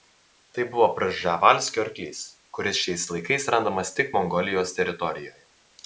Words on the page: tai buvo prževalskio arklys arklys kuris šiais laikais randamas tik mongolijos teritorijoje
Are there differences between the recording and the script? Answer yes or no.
yes